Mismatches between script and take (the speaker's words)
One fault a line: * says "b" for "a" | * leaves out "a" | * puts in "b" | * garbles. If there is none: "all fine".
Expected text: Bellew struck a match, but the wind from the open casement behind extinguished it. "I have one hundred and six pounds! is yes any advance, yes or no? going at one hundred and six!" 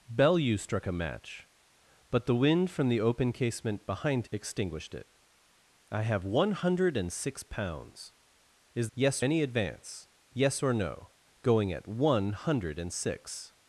all fine